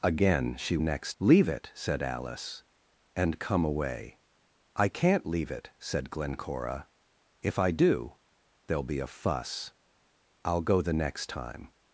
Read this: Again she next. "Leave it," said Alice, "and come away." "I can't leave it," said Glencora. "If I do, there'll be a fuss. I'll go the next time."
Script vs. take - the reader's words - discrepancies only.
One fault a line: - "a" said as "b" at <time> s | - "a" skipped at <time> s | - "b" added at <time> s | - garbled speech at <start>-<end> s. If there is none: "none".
none